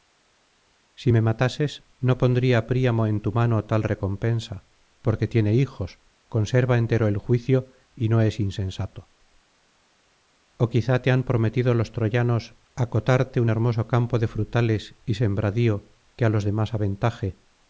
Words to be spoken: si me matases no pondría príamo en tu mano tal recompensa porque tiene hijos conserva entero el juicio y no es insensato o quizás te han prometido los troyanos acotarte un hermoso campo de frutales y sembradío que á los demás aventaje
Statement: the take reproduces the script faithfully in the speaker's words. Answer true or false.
true